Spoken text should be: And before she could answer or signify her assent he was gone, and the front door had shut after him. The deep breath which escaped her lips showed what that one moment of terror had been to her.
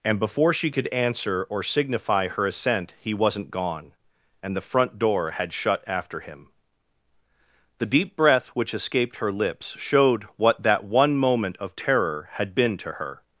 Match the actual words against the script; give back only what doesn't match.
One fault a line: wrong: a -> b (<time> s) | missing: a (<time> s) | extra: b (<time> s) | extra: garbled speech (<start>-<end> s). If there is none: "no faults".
wrong: was -> wasn't (3.1 s)